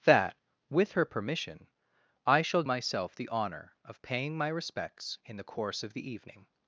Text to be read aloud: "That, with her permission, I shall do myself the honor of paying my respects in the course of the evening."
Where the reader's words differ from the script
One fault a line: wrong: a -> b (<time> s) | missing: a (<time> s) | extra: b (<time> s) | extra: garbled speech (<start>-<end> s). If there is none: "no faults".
missing: do (2.6 s)